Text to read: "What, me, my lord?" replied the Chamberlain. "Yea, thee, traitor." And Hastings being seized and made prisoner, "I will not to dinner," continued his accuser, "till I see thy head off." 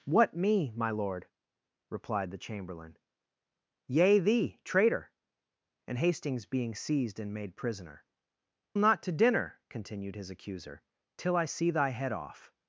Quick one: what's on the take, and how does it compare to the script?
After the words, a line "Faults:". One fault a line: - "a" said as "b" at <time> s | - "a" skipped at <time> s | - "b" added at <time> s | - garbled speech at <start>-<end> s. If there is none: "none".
"What, me, my lord?" replied the Chamberlain. "Yea, thee, traitor." And Hastings being seized and made prisoner, "not to dinner," continued his accuser, "till I see thy head off."
Faults:
- "I will" skipped at 8.1 s